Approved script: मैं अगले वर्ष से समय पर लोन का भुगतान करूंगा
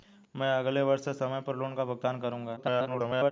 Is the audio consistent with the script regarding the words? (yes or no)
no